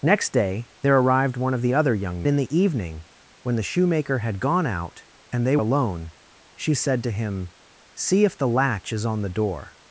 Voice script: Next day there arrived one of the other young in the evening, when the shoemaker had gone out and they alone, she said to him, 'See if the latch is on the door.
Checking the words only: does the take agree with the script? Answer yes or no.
yes